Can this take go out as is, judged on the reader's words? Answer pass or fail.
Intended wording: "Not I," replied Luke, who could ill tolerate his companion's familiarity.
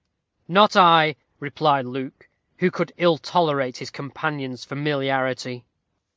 pass